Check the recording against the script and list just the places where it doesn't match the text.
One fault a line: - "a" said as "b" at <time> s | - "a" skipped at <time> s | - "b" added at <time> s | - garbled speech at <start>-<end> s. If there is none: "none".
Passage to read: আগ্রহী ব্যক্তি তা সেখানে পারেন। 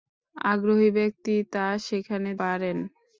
none